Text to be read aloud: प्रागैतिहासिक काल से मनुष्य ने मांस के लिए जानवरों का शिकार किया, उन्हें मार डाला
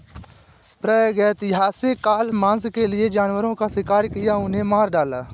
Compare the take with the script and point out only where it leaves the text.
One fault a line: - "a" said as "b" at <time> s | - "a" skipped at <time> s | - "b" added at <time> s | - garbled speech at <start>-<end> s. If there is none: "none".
- "से मनुष्य ने" skipped at 2.3 s